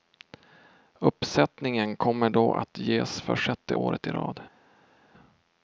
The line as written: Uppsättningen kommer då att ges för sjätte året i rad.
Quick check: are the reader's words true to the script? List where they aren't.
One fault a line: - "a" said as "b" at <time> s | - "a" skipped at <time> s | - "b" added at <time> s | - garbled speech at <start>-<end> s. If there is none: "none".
none